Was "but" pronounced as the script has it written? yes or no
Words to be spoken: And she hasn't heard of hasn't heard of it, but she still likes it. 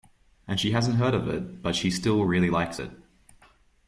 yes